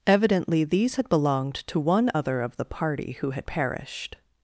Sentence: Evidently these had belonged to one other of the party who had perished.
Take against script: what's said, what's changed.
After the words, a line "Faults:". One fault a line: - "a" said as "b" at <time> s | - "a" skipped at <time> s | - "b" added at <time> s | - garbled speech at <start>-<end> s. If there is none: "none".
Evidently these had belonged to one other of the party who had perished.
Faults:
none